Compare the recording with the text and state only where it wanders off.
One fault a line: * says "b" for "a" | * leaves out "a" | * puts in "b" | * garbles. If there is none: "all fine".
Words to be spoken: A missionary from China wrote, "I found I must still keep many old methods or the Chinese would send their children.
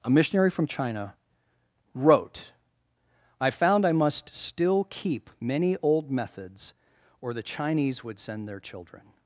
all fine